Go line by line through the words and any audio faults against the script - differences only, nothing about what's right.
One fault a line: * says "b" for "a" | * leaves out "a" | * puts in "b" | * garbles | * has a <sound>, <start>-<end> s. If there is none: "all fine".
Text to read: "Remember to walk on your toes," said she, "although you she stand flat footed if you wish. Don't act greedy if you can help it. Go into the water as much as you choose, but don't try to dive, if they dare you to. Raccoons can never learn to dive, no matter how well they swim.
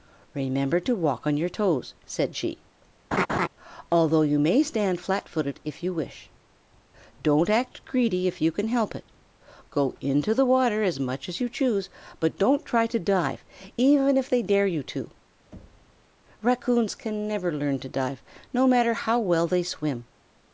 * has a laugh, 3.1-3.5 s
* says "may" for "she"
* puts in "even"
* has a thud, 15.5-16.0 s